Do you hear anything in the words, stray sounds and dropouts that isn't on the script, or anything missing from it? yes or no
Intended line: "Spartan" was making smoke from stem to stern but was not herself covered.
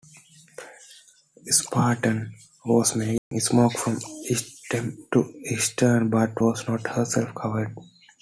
yes